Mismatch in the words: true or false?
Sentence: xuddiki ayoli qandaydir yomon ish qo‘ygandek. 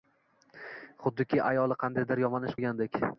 false